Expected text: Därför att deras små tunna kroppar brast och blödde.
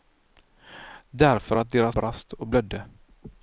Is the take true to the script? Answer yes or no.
no